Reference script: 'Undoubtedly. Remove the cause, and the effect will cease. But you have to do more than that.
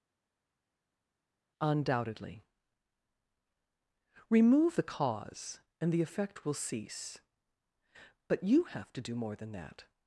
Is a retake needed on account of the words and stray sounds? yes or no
no